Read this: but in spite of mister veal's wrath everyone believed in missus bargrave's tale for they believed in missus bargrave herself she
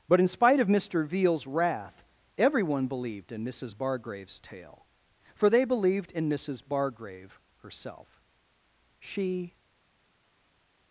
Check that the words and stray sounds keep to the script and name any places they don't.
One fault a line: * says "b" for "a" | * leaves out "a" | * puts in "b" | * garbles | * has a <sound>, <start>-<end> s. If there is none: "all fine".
all fine